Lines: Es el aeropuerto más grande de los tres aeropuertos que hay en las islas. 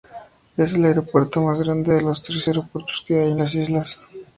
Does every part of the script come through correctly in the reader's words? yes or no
yes